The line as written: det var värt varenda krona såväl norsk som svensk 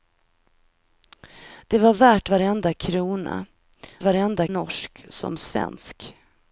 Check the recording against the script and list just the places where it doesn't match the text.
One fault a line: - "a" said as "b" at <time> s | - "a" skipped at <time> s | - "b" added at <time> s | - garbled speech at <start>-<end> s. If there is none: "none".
- "såväl" said as "varenda" at 4.0 s